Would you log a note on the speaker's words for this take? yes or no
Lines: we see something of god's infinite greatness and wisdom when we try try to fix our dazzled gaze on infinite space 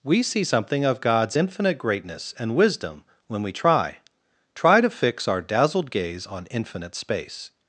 no